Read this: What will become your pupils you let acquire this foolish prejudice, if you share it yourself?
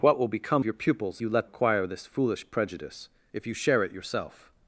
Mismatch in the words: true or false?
false